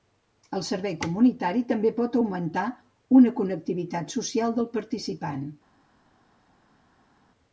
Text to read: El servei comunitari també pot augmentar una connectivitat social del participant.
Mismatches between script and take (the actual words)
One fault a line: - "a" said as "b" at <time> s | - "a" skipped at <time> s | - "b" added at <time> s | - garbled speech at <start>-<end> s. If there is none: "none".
none